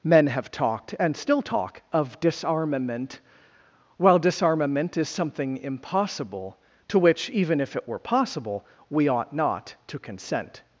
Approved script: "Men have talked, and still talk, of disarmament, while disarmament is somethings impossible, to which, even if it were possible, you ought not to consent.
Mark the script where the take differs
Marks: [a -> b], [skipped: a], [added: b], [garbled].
"Men have talked, and still talk, of disarmament, while disarmament is [somethings -> something] impossible, to which, even if it were possible, [you -> we] ought not to consent.